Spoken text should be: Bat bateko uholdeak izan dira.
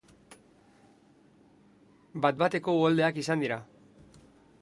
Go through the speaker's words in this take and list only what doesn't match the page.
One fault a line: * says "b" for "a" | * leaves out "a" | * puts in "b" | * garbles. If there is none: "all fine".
all fine